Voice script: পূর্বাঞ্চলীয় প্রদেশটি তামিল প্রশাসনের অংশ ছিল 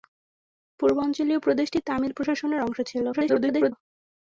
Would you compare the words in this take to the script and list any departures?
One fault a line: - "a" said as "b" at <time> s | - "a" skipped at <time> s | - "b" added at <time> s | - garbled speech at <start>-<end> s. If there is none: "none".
- garbled speech at 3.1-3.7 s